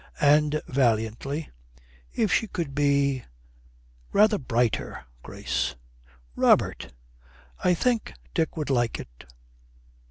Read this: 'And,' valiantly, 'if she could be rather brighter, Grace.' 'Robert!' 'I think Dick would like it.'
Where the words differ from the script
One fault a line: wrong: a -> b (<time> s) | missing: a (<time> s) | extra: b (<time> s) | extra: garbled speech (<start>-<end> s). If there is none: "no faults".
no faults